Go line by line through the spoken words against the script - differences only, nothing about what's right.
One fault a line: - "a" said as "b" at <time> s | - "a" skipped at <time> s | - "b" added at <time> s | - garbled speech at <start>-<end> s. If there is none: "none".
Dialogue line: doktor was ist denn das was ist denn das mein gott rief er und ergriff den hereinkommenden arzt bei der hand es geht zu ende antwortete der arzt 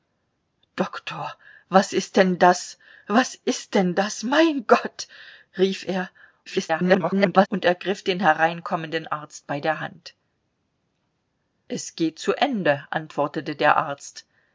- garbled speech at 6.5-7.5 s